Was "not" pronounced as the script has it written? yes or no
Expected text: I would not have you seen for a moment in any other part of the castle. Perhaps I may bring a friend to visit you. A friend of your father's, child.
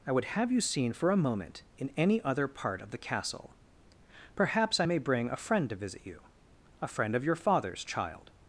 no